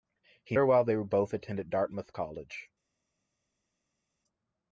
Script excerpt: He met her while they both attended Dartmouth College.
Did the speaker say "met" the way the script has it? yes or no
no